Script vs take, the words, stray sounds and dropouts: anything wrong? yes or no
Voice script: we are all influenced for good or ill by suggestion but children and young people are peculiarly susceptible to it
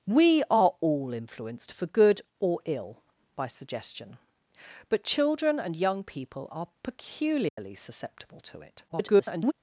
yes